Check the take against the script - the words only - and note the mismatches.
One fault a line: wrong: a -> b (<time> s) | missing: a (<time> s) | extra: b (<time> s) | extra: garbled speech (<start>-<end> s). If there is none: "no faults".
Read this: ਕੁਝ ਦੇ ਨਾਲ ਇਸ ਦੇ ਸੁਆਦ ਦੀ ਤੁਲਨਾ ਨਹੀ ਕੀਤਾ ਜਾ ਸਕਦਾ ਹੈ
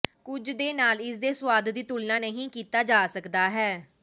no faults